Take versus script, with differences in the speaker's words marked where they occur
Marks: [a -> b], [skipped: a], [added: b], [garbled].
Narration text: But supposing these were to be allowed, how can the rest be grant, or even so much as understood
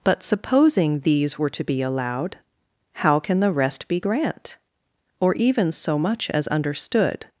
But supposing these were to be allowed, how can the rest be grant, or even so much as understood